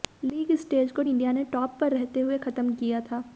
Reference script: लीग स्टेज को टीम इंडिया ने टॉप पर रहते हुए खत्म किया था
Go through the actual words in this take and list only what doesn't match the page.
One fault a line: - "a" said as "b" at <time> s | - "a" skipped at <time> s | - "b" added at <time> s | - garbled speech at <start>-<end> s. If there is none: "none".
- "टीम" skipped at 1.0 s